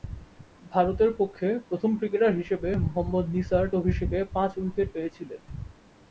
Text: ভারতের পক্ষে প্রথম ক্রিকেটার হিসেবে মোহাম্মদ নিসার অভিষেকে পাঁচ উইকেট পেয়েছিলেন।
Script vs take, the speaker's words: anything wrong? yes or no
no